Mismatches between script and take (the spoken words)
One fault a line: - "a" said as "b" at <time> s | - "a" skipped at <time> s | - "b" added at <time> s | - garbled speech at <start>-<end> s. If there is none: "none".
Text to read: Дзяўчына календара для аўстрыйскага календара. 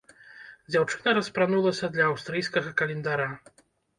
- "календара" said as "распранулася" at 1.2 s